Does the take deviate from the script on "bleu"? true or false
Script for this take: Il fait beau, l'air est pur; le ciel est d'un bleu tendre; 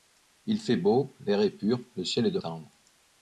true